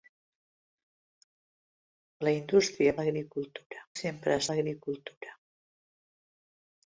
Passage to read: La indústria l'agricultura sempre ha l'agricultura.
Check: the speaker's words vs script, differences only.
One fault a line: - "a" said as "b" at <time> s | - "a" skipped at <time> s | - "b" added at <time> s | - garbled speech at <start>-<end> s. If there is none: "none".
none